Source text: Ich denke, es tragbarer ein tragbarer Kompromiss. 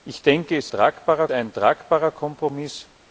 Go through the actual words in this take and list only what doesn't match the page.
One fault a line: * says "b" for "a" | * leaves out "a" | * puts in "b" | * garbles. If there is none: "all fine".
all fine